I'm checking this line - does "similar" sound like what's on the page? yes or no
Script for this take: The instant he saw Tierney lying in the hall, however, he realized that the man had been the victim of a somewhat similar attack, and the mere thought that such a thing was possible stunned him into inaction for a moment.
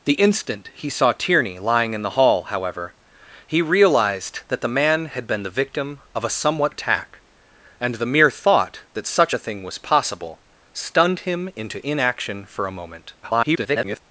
no